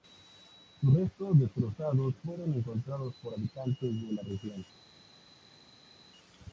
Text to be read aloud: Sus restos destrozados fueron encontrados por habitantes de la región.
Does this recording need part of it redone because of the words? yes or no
no